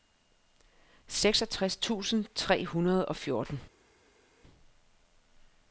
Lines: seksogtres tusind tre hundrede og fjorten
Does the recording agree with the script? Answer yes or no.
yes